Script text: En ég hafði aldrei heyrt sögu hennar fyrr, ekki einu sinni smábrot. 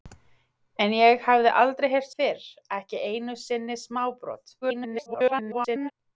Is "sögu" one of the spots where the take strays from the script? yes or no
yes